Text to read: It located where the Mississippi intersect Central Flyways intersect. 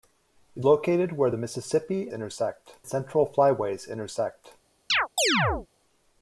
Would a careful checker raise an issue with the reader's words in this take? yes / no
no